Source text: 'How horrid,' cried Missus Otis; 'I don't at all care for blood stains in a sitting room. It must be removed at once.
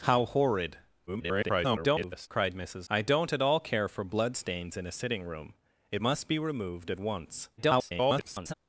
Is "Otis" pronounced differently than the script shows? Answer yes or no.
yes